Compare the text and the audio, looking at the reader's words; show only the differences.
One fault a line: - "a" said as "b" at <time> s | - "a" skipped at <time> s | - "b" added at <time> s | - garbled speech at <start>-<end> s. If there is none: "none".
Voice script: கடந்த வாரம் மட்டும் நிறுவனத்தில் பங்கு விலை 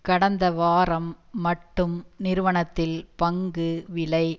none